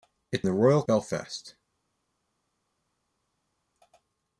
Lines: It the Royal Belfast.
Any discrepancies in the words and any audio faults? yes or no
no